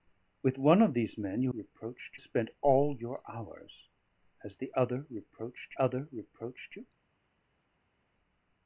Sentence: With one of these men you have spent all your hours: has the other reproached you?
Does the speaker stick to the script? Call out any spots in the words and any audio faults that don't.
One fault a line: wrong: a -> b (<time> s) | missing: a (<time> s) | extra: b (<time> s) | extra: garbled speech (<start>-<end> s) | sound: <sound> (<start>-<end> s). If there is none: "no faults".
wrong: have -> reproached (1.5 s)
extra: other reproached (5.8 s)